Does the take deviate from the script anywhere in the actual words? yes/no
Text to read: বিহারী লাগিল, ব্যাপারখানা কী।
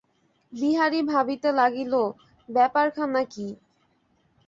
yes